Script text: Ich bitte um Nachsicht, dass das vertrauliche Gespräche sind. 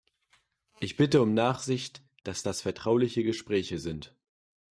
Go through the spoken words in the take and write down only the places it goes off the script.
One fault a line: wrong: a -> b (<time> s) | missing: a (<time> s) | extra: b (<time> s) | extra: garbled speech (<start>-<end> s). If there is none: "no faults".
no faults